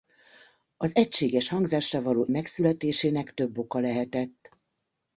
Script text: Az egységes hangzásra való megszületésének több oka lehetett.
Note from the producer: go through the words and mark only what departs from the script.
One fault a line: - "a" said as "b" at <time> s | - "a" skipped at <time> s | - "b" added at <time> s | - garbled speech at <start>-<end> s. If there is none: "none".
none